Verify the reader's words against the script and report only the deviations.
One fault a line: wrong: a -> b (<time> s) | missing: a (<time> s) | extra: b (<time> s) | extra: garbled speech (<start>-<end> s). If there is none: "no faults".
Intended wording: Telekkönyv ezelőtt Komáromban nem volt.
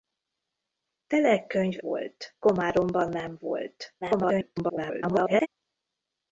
wrong: ezelőtt -> volt (1.8 s)
extra: garbled speech (4.0-5.5 s)